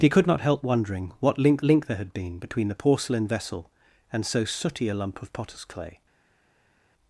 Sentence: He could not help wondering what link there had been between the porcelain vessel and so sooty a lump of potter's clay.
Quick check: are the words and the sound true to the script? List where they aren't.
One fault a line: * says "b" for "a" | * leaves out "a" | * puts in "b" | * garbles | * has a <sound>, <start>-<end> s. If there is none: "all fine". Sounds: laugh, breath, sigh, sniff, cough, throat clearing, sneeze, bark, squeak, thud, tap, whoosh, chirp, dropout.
* puts in "link"